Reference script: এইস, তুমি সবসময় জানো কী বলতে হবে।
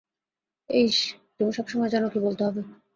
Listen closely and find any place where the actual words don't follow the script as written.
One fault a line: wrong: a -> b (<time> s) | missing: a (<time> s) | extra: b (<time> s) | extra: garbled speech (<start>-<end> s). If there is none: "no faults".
no faults